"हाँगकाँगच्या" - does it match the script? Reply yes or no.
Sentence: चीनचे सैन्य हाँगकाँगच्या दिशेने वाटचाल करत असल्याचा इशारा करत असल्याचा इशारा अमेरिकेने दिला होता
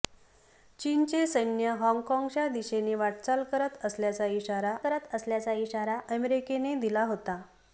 yes